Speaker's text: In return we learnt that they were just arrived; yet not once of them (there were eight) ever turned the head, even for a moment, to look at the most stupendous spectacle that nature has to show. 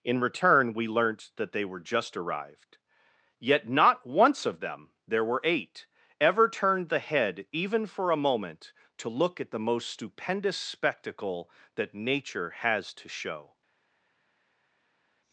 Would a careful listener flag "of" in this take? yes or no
no